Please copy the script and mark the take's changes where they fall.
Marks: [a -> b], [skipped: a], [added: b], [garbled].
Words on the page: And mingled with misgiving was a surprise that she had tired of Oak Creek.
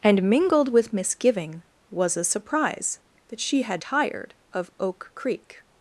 And mingled with misgiving was a surprise that she had tired of Oak Creek.